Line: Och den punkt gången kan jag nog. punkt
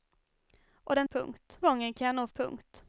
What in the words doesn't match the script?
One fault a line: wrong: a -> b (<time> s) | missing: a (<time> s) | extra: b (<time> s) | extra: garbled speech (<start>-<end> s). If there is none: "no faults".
no faults